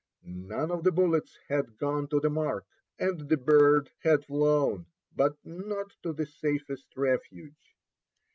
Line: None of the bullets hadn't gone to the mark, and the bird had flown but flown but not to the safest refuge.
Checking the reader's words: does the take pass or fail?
fail